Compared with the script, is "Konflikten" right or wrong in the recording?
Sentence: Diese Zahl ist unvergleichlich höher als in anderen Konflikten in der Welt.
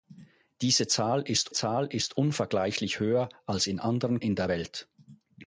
wrong